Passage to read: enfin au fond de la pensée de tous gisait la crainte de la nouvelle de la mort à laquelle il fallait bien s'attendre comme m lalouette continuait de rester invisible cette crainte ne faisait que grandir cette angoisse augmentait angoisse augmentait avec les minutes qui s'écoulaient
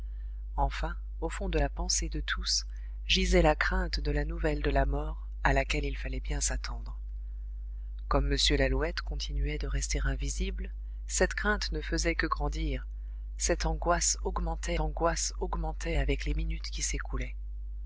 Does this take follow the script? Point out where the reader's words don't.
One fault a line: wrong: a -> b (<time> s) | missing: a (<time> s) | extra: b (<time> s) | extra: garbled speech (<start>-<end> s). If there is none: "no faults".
no faults